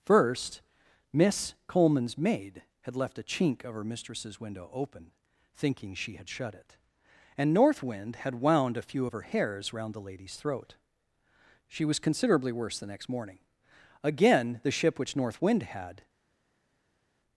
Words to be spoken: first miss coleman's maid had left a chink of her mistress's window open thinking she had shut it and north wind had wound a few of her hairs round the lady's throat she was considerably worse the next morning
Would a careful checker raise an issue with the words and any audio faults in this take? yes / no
yes